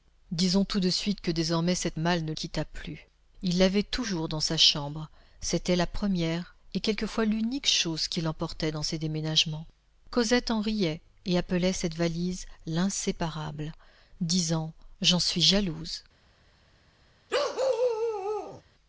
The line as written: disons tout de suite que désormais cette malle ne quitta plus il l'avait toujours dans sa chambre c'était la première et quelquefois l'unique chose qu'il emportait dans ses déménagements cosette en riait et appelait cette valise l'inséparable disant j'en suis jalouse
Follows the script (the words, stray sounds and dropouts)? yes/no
no